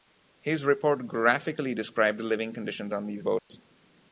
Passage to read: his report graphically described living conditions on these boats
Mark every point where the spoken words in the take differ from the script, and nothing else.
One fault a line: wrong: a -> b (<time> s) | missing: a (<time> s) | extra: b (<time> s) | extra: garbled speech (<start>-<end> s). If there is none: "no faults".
no faults